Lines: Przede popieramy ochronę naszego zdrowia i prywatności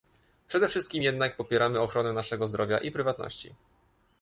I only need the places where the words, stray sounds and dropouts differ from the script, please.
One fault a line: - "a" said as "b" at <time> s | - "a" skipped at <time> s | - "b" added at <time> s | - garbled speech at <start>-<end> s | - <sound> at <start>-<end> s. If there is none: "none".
- "wszystkim jednak" added at 0.7 s